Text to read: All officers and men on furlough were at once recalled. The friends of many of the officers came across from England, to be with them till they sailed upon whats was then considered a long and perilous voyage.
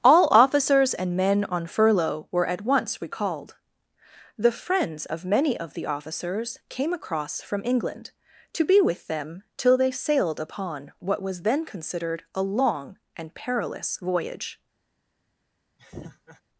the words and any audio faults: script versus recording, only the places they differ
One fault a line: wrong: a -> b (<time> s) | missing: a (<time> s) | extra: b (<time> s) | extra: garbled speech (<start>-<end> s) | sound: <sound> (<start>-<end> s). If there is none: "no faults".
wrong: whats -> what (11.0 s)
sound: laugh (15.8-16.4 s)